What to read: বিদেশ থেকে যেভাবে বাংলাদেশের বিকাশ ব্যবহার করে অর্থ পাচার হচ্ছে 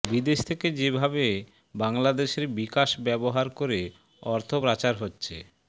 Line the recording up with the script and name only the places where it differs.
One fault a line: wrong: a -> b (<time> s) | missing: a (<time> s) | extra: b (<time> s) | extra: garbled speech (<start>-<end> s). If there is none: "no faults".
no faults